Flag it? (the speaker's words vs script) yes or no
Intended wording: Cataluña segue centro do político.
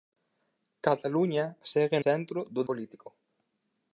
no